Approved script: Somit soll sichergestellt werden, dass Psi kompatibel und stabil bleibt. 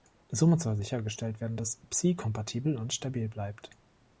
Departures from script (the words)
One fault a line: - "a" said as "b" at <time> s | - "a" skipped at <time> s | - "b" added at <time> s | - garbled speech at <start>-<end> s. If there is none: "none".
none